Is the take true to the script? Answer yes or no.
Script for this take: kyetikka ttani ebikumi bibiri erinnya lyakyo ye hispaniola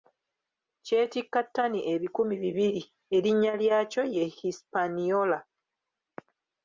yes